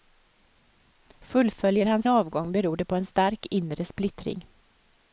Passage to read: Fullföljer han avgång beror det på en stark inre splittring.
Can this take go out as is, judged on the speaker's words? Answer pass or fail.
pass